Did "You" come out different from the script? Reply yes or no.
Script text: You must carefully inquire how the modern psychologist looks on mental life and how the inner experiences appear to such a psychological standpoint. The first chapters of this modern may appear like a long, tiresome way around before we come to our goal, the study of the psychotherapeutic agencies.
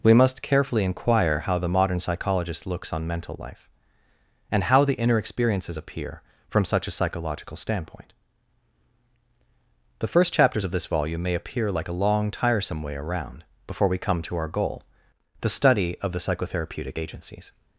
yes